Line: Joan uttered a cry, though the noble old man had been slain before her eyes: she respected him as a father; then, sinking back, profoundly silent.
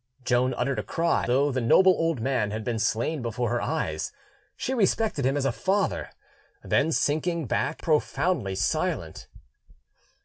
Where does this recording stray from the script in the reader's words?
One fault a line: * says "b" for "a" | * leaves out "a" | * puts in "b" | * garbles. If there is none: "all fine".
all fine